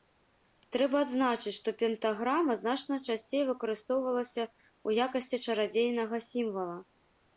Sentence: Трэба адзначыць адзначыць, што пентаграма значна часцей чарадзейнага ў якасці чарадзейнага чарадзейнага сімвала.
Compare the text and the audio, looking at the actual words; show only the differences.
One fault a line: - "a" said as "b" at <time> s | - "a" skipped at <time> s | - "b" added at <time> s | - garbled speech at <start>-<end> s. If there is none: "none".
- "адзначыць" skipped at 1.5 s
- "чарадзейнага" said as "выкарыстоўвалася" at 3.5 s
- "чарадзейнага" skipped at 6.2 s